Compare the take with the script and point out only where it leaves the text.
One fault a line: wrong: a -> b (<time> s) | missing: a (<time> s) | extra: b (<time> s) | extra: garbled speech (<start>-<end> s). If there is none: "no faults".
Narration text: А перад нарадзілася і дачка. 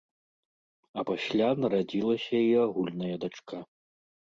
wrong: перад -> пасля (1.1 s)
extra: агульная (2.7 s)